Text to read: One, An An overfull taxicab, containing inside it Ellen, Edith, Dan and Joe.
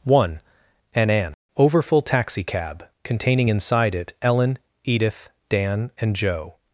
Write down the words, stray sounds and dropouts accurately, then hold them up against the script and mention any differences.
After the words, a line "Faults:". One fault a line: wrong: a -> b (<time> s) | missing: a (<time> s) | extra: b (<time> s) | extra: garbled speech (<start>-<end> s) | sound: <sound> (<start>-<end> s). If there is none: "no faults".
One, An An overfull taxicab, containing inside it Ellen, Edith, Dan and Joe.
Faults:
no faults